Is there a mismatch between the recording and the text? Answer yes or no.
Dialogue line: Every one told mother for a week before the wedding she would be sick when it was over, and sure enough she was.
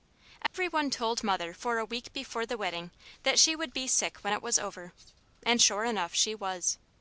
yes